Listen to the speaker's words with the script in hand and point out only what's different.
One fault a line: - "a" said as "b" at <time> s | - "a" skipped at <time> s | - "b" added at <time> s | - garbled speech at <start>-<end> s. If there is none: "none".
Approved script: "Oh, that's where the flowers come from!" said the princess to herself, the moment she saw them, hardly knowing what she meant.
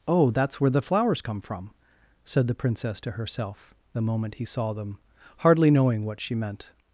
- "she" said as "he" at 4.4 s